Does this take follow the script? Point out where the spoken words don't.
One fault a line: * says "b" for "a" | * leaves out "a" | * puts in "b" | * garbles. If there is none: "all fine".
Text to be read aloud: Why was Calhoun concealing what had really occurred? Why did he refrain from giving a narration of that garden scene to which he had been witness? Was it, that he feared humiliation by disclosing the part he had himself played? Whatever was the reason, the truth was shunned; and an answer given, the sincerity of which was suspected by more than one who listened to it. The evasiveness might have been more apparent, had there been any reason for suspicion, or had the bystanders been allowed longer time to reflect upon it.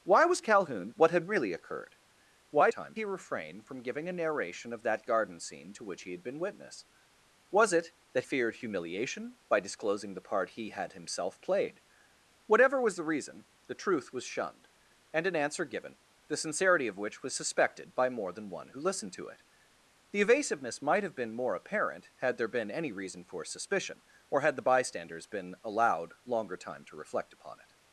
* leaves out "concealing"
* says "time" for "did"
* leaves out "he"